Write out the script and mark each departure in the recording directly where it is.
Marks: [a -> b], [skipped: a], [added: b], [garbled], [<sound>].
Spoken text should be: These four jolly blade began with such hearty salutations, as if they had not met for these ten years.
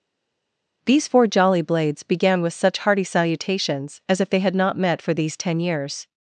These four jolly [blade -> blades] began with such hearty salutations, as if they had not met for these ten years.